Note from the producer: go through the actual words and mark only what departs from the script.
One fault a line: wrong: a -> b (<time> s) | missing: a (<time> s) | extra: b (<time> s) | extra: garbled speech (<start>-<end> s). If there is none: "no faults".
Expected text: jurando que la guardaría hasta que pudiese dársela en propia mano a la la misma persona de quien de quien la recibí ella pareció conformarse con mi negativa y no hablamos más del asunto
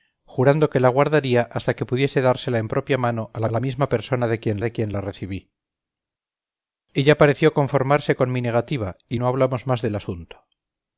no faults